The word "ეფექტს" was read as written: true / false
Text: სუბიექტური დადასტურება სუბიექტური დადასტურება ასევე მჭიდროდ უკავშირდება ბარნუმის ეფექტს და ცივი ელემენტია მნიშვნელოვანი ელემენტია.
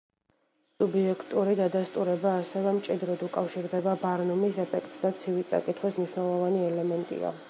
true